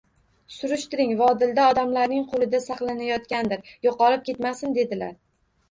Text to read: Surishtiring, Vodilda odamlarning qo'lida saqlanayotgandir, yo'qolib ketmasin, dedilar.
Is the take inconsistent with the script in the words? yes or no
no